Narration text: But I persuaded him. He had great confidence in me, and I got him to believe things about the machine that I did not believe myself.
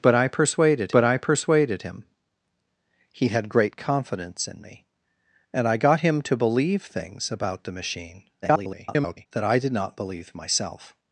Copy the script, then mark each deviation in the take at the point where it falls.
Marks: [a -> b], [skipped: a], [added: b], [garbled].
But I persuaded [added: but I persuaded] him. He had great confidence in me, and I got him to believe things about the machine [garbled] that I did not believe myself.